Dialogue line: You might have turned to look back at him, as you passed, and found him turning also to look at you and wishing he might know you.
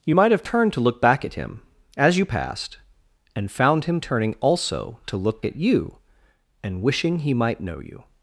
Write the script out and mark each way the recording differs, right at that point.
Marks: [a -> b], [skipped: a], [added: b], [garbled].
You might have turned to look back at him, as you passed, and found him turning also to look at you and wishing he might know you.